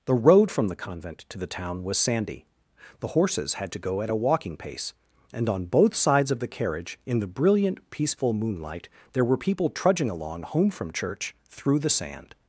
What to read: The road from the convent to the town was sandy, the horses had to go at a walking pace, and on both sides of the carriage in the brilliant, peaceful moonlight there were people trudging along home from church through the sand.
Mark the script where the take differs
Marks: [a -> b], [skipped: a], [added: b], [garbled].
The road from the convent to the town was sandy, the horses had to go at a walking pace, and on both sides of the carriage in the brilliant, peaceful moonlight there were people trudging along home from church through the sand.